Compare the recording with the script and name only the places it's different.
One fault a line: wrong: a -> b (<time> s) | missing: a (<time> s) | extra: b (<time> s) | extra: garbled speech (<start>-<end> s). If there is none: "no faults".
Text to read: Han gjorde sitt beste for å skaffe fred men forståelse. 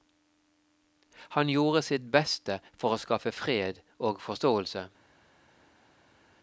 wrong: men -> og (4.0 s)